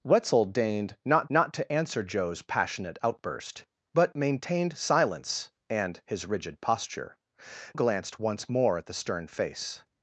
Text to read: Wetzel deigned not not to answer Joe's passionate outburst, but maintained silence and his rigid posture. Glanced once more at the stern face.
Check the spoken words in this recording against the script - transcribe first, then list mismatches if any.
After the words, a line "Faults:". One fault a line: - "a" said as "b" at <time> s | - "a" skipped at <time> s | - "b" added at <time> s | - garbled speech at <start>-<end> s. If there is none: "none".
Wetzel deigned not not to answer Joe's passionate outburst, but maintained silence and his rigid posture. Glanced once more at the stern face.
Faults:
none